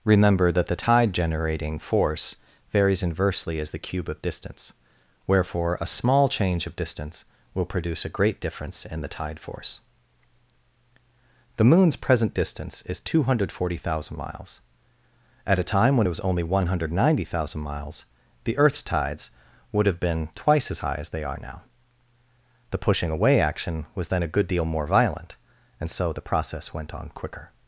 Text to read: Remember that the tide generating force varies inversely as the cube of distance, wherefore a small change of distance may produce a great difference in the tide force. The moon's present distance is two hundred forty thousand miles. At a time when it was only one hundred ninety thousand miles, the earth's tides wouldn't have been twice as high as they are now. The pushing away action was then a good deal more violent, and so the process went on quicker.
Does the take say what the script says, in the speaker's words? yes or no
no